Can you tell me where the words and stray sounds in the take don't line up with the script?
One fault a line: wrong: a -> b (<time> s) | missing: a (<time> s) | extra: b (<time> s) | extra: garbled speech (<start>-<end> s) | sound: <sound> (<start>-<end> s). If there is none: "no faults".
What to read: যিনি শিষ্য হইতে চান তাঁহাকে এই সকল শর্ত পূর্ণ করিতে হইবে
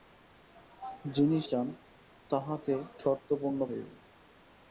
missing: শিষ্য হইতে (1.4 s)
missing: এই সকল (2.7 s)
missing: করিতে (3.6 s)